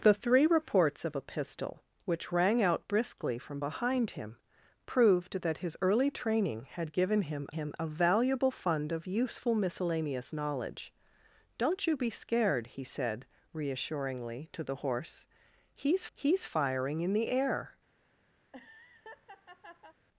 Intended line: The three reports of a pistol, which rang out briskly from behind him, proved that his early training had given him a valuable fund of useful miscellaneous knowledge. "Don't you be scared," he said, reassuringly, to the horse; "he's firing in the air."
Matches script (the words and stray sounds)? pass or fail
fail